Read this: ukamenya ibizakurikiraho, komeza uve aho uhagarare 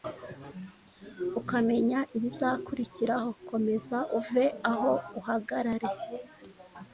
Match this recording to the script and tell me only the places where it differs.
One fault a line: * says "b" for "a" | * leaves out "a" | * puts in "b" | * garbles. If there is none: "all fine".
all fine